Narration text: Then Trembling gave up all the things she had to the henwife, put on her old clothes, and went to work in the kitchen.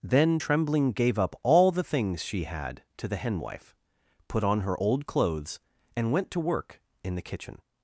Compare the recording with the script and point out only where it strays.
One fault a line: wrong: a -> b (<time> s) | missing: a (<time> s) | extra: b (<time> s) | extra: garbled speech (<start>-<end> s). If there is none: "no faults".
no faults